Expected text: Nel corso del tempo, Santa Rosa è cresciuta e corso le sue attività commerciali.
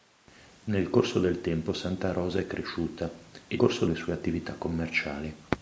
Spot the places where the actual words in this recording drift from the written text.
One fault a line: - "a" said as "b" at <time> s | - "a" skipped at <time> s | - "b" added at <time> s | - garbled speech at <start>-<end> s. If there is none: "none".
none